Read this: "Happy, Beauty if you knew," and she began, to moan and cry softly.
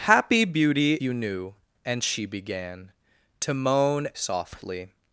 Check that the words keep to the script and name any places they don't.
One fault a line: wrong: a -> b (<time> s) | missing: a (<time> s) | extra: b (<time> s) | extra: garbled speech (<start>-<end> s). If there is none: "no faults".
missing: if (0.9 s)
missing: and cry (4.1 s)